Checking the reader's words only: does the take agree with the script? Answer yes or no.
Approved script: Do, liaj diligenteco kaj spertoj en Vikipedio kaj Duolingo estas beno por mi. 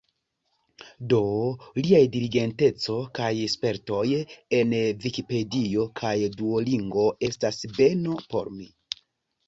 yes